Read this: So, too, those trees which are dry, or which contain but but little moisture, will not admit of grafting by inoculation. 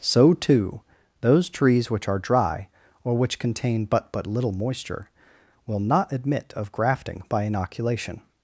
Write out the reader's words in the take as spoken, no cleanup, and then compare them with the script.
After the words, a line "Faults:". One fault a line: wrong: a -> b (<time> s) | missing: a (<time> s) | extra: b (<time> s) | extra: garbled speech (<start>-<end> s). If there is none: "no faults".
So, too, those trees which are dry, or which contain but but little moisture, will not admit of grafting by inoculation.
Faults:
no faults